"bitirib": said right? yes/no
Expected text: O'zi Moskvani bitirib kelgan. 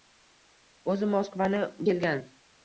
no